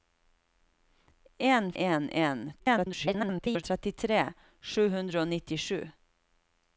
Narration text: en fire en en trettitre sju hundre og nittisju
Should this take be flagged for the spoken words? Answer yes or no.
yes